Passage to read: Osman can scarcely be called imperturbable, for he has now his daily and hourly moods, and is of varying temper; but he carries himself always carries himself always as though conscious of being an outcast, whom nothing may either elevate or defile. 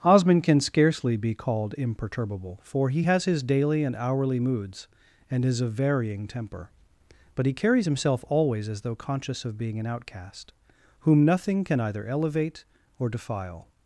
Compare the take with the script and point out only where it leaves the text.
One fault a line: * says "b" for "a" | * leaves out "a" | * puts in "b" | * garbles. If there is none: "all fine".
* leaves out "now"
* leaves out "carries himself always"
* says "can" for "may"